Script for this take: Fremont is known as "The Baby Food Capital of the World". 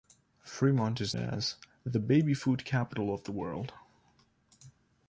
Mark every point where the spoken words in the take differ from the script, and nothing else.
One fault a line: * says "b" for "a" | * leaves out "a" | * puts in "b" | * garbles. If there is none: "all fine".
* leaves out "known"